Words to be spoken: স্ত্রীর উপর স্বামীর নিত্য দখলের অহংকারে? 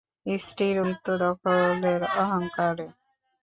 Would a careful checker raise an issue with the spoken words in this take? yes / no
yes